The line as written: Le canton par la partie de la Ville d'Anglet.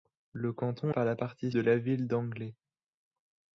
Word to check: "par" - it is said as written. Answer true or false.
true